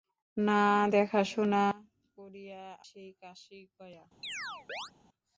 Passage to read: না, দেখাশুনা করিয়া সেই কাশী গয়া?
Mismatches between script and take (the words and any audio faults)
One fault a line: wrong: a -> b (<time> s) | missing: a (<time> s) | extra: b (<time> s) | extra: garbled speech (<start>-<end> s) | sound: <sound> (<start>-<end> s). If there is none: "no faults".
sound: chirp (4.2-4.9 s)